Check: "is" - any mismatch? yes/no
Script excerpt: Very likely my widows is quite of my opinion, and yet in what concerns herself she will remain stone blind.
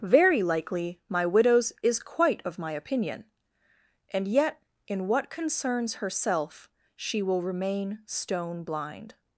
no